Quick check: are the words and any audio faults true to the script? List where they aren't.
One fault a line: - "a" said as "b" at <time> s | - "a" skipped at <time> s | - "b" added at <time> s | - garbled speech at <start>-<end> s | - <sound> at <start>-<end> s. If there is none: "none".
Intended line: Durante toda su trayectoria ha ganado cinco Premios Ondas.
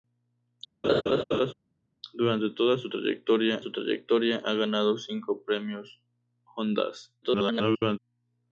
- laugh at 0.8-1.5 s
- "su trayectoria" added at 3.6 s
- garbled speech at 7.2-8.0 s